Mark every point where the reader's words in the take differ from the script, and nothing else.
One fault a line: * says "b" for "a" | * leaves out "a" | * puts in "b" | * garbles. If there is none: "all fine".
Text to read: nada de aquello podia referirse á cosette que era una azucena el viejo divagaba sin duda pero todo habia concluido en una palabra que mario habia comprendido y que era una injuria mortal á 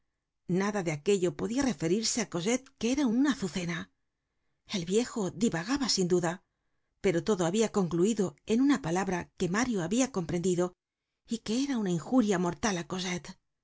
all fine